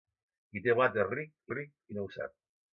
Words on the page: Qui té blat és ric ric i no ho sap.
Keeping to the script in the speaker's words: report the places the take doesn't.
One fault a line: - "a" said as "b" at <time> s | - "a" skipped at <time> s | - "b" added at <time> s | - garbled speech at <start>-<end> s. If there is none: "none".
none